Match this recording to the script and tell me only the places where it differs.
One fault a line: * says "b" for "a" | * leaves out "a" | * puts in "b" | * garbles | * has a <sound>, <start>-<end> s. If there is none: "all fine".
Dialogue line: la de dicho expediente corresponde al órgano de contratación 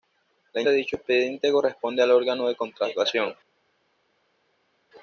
all fine